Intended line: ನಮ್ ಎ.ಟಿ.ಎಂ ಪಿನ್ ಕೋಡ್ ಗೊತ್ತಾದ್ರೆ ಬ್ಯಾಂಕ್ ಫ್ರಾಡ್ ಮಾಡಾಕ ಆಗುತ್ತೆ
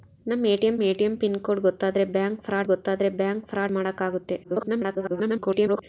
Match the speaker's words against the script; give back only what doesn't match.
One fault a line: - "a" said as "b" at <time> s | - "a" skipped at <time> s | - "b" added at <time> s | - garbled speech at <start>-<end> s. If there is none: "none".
- "ಎ.ಟಿ.ಎಂ" added at 0.8 s
- "ಗೊತ್ತಾದ್ರೆ ಬ್ಯಾಂಕ್ ಫ್ರಾಡ್" added at 2.7 s
- garbled speech at 4.4-5.8 s